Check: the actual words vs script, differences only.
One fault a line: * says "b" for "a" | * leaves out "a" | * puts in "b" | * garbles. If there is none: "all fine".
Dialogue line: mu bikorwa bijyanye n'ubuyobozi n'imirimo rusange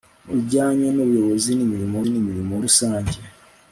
* leaves out "bikorwa"
* puts in "n'imirimo"